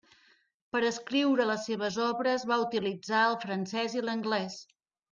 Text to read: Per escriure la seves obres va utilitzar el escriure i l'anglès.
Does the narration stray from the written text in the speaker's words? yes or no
yes